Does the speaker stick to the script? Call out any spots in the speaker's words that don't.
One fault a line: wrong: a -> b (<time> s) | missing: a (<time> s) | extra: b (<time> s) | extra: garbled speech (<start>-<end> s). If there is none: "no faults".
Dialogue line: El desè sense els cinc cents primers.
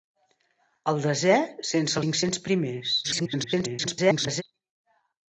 missing: els (2.0 s)
extra: garbled speech (3.0-4.4 s)